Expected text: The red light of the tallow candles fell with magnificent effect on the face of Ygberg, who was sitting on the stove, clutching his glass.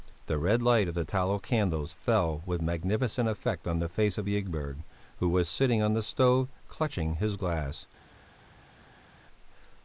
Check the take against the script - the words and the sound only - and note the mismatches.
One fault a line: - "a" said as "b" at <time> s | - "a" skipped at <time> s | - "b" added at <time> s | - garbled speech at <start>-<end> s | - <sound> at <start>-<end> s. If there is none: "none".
none